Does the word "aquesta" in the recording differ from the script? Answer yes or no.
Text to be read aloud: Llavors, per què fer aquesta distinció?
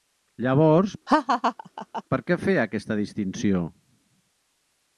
no